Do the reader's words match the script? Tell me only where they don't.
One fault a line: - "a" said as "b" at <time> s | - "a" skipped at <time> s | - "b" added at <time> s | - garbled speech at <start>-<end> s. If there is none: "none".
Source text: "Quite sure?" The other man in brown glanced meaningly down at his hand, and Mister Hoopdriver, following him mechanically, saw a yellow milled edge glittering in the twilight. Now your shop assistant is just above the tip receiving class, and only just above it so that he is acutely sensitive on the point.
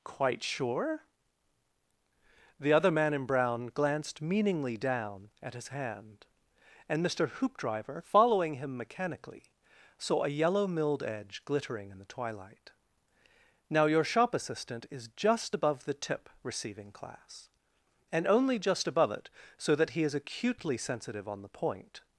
none